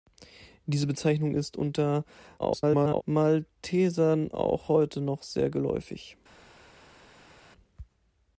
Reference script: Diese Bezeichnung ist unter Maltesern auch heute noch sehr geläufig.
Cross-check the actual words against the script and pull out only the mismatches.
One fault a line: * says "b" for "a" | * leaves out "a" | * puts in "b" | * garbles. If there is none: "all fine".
* garbles